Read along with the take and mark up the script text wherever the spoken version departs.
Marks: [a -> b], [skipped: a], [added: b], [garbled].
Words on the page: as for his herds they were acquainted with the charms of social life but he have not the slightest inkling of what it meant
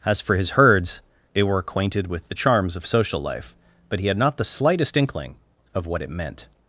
as for his herds they were acquainted with the charms of social life but he [have -> had] not the slightest inkling of what it meant